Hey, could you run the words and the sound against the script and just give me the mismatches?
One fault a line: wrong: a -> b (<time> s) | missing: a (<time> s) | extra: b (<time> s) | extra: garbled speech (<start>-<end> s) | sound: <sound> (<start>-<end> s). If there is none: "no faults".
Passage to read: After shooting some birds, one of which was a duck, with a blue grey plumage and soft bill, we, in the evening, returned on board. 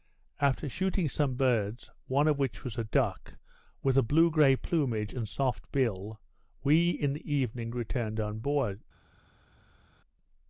no faults